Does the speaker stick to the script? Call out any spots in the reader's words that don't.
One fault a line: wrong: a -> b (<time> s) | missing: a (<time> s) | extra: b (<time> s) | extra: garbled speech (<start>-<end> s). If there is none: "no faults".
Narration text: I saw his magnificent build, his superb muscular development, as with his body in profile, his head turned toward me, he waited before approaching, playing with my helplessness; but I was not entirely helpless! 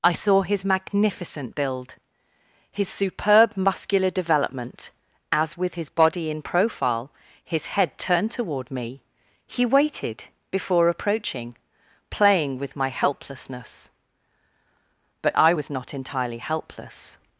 no faults